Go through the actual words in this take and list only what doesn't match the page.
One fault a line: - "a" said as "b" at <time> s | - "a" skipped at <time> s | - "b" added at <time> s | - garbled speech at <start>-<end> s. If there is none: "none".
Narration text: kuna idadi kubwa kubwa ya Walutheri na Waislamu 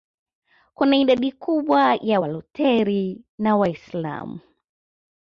- "kubwa" skipped at 1.9 s